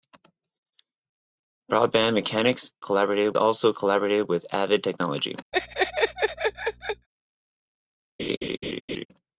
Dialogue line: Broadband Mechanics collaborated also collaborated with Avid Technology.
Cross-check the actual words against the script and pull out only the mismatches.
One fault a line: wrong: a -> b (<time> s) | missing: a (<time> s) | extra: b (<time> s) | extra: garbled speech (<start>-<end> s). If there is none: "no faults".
no faults